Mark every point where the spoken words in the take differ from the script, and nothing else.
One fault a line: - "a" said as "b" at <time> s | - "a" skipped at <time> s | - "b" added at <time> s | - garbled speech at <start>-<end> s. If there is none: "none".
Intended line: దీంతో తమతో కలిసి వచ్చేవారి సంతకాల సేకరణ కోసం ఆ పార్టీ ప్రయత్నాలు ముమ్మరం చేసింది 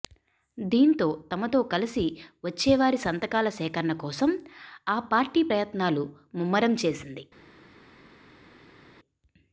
none